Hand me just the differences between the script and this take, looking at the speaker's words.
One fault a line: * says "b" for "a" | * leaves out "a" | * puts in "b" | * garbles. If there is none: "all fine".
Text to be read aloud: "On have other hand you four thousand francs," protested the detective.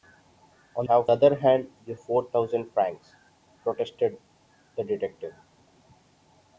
all fine